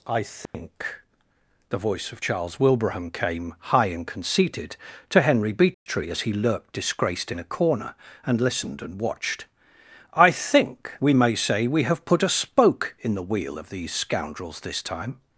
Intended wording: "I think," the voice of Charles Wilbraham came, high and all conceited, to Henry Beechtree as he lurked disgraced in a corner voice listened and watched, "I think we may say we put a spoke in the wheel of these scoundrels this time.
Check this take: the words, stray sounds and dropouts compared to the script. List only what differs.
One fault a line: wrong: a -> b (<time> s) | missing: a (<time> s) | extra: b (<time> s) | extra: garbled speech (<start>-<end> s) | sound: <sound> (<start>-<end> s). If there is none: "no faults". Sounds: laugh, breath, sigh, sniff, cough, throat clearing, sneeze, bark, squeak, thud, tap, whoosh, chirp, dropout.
sound: dropout (0.5-0.5 s)
missing: all (4.1 s)
sound: dropout (5.7-5.9 s)
wrong: voice -> and (8.2 s)
extra: have (11.8 s)